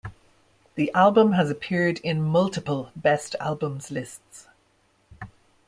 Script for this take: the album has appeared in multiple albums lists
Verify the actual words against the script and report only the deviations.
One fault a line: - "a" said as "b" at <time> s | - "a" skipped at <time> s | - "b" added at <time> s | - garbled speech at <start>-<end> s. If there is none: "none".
- "best" added at 3.0 s